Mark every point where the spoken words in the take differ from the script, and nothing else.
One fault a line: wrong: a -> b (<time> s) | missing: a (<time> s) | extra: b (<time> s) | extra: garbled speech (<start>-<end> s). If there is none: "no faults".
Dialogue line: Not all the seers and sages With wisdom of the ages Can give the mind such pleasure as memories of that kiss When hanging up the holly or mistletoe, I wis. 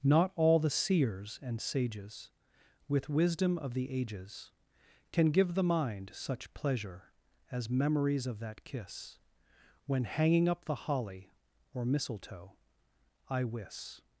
no faults